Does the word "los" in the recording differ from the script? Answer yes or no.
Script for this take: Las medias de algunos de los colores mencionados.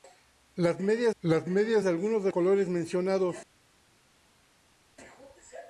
yes